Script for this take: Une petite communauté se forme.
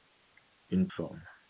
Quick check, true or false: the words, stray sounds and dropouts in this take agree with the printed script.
false